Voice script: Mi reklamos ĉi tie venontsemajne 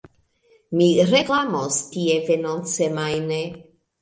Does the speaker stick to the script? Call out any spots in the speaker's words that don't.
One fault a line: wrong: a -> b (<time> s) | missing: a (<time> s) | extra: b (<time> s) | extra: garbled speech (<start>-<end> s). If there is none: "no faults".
missing: ĉi (1.8 s)